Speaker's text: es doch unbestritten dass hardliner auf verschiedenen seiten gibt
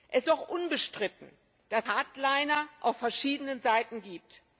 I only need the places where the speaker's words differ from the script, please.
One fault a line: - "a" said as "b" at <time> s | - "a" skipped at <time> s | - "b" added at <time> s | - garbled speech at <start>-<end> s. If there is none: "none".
none